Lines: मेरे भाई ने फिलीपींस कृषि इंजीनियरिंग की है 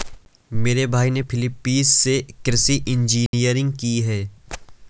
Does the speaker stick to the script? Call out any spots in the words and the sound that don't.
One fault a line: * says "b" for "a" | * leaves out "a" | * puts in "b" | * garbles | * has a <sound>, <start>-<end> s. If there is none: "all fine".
* puts in "से"
* has a dropout, 3.3-3.3 s